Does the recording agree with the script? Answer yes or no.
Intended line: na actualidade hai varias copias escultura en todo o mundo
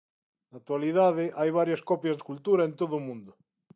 yes